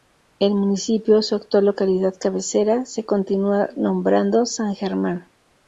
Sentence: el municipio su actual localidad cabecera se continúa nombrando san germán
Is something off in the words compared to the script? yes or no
no